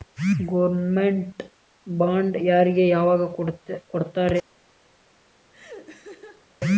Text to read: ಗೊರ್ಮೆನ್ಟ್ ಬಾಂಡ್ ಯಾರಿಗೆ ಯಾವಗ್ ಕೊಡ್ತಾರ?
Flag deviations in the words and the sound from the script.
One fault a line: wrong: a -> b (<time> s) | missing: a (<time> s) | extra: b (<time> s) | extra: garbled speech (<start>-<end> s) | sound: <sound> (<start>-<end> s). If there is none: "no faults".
sound: laugh (5.5-6.5 s)